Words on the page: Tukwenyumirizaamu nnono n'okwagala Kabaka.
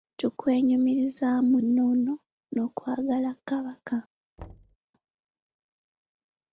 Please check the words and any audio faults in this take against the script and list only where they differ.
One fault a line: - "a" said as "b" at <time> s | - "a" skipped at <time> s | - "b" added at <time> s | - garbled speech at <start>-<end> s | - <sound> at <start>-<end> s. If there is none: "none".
- thud at 4.4-4.8 s